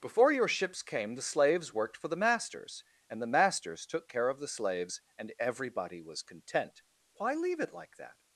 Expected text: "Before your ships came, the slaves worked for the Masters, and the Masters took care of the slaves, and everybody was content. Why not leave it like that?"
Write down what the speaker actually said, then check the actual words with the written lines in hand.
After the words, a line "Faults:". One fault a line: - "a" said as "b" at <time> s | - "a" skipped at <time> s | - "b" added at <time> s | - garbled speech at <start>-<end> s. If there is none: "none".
"Before your ships came, the slaves worked for the Masters, and the Masters took care of the slaves, and everybody was content. Why leave it like that?"
Faults:
- "not" skipped at 7.3 s